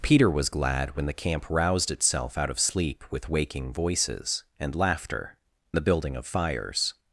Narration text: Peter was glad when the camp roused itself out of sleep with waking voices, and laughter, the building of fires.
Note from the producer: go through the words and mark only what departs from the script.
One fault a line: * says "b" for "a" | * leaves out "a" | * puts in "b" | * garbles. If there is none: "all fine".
all fine